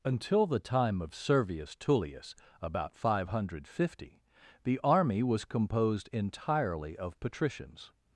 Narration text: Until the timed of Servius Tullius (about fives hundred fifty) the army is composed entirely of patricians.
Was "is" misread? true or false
true